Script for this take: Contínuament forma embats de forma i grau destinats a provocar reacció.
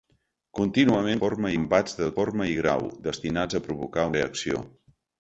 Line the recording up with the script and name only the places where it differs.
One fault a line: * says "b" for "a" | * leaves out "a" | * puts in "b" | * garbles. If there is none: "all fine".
all fine